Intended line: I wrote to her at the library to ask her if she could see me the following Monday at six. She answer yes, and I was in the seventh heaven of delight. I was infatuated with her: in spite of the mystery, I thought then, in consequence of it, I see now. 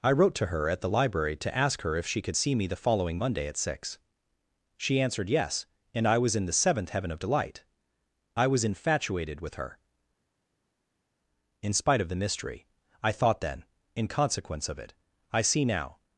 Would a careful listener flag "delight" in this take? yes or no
no